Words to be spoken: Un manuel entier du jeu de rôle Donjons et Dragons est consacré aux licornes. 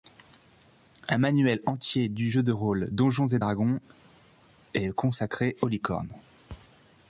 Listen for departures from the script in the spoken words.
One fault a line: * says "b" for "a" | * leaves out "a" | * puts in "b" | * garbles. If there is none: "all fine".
all fine